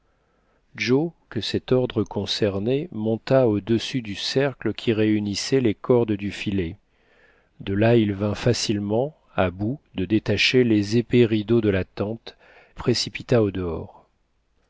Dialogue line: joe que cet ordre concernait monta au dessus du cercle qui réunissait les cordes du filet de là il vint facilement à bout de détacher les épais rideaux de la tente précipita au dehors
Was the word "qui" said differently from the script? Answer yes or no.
no